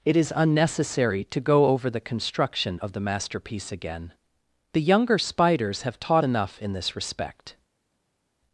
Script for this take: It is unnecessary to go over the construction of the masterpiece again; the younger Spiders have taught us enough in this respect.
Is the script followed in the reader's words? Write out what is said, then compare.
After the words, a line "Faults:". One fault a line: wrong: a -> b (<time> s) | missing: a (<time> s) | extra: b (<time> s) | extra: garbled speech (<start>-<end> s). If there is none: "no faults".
It is unnecessary to go over the construction of the masterpiece again; the younger Spiders have taught enough in this respect.
Faults:
missing: us (6.2 s)